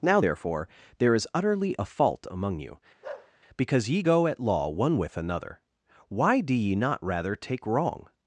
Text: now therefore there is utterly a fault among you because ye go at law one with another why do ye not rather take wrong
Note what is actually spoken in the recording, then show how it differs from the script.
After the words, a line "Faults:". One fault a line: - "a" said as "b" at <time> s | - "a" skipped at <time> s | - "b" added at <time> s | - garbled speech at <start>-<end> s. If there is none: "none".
now therefore there is utterly a fault among you because ye go at law one with another why do ye not rather take wrong
Faults:
none